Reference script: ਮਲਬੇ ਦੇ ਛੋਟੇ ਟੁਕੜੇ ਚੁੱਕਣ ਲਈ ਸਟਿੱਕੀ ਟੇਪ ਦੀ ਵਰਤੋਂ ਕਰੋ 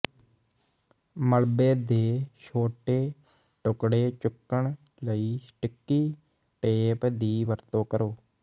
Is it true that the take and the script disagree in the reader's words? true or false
false